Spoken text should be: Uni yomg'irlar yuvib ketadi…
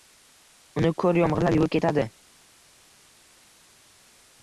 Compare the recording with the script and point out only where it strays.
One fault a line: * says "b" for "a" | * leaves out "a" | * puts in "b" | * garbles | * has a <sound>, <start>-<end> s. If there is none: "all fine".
* puts in "ko'r"